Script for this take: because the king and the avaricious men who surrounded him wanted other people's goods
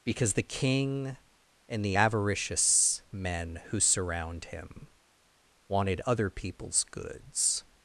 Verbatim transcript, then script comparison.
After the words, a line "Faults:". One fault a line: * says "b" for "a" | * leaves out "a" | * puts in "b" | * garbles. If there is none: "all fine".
because the king and the avaricious men who surround him wanted other people's goods
Faults:
* says "surround" for "surrounded"